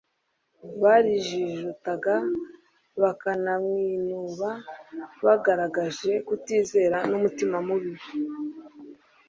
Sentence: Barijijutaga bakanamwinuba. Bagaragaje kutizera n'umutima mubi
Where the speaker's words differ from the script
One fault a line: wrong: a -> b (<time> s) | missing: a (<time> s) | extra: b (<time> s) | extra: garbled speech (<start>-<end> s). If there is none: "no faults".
no faults